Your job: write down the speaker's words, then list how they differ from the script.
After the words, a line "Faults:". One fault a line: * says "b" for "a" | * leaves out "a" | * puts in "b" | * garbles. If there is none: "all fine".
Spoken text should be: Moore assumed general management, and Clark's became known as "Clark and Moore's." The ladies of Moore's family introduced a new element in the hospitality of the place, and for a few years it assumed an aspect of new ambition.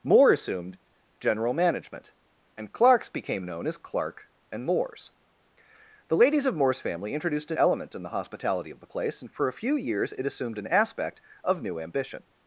Moore assumed general management, and Clark's became known as "Clark and Moore's." The ladies of Moore's family introduced a element in the hospitality of the place, and for a few years it assumed an aspect of new ambition.
Faults:
* leaves out "new"